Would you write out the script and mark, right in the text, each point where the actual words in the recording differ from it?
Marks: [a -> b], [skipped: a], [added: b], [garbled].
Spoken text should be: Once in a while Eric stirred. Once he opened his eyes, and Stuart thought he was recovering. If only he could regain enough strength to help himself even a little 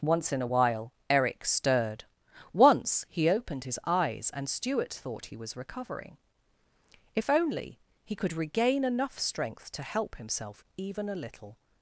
Once in a while Eric stirred. Once he opened his eyes, and Stuart thought he was recovering. If only he could regain enough strength to help himself even a little